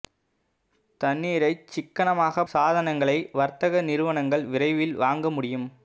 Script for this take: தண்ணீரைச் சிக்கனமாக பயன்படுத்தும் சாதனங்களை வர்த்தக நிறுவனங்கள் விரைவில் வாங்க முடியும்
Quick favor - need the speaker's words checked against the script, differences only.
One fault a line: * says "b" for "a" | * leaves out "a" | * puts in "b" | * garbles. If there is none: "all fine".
* leaves out "பயன்படுத்தும்"